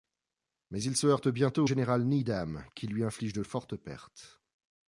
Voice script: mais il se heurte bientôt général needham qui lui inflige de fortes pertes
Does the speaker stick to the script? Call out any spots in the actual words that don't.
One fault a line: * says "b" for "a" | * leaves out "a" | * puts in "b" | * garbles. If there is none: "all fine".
all fine